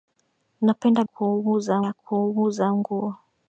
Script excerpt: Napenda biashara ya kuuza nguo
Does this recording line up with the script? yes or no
no